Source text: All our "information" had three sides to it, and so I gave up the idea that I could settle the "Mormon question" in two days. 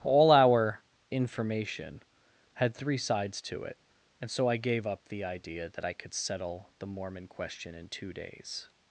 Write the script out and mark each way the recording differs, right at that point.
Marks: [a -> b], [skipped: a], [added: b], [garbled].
All our "information" had three sides to it, and so I gave up the idea that I could settle the "Mormon question" in two days.